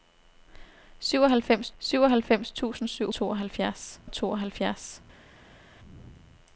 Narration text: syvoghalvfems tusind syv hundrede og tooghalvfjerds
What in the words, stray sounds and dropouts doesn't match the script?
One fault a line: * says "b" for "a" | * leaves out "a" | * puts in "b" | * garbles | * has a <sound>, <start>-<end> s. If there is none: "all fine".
* puts in "syvoghalvfems"
* says "tooghalvfjerds" for "hundrede"